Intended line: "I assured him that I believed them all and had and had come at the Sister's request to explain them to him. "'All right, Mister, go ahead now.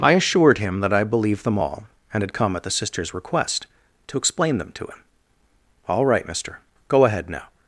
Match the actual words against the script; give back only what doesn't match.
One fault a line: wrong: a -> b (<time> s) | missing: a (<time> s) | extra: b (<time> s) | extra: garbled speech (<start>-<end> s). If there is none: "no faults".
missing: and had (2.3 s)